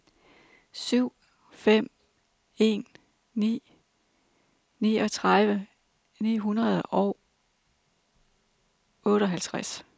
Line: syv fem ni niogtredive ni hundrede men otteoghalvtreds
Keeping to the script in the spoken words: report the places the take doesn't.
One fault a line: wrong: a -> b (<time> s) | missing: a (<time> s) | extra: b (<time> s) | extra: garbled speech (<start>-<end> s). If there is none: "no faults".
extra: en (2.6 s)
wrong: men -> og (6.8 s)